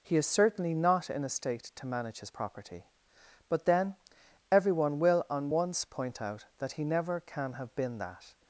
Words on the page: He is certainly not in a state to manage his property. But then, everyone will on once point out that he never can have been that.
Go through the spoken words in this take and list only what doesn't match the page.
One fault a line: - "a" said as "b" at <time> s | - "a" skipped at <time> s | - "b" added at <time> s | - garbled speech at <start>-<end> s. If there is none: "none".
none